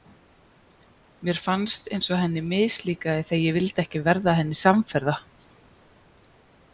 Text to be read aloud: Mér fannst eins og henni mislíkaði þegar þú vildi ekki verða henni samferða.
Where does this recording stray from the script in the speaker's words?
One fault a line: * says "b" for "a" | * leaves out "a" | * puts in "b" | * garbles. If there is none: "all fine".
* says "ég" for "þú"